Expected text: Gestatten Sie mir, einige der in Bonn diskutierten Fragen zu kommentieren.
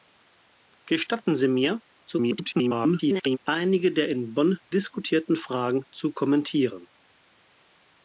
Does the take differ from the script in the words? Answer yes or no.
yes